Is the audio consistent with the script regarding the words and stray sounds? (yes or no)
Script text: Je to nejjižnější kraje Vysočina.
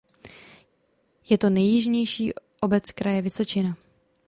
no